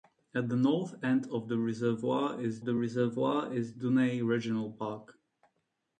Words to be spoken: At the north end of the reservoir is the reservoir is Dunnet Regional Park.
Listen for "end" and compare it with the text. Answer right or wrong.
right